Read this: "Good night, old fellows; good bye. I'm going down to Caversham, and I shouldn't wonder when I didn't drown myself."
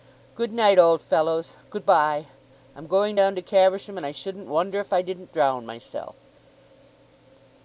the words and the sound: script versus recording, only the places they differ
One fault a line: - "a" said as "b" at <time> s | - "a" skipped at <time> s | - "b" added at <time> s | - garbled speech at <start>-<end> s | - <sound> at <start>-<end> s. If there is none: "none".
- "when" said as "if" at 4.8 s